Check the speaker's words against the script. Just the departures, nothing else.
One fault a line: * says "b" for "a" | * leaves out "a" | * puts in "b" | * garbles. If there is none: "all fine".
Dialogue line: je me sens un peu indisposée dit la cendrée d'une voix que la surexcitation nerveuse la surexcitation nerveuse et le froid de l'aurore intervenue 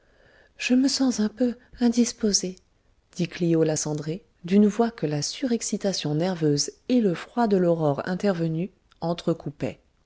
* puts in "clio"
* leaves out "la surexcitation nerveuse"